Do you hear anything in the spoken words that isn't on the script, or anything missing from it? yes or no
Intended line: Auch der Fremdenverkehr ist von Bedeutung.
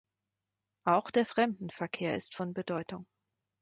no